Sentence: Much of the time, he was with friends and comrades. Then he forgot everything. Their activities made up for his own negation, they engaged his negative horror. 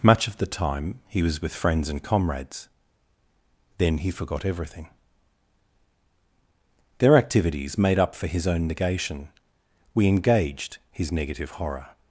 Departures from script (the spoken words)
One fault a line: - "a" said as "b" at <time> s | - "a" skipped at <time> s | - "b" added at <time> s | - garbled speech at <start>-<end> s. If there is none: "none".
- "they" said as "we" at 9.9 s